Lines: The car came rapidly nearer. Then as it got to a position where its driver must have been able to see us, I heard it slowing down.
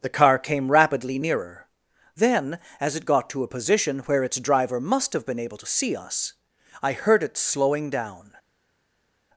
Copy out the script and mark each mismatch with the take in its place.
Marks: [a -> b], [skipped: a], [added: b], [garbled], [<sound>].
The car came rapidly nearer. Then as it got to a position where its driver must have been able to see us, I heard it slowing down.